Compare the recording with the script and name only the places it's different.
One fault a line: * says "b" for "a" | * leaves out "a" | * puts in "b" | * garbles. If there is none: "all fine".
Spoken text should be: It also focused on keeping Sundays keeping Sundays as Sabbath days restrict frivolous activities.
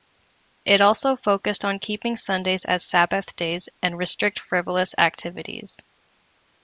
* leaves out "keeping Sundays"
* puts in "and"